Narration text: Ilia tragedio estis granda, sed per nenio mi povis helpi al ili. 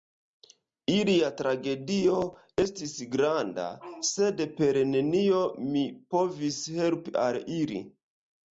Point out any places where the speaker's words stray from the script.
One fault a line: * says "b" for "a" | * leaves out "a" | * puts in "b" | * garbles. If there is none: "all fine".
all fine